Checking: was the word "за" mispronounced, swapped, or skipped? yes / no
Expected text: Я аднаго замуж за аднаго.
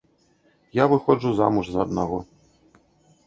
no